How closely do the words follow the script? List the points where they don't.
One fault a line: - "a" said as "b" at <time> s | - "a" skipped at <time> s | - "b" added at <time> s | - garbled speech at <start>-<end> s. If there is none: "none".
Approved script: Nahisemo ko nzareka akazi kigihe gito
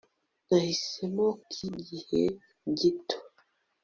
- "ko nzareka akazi" skipped at 1.3 s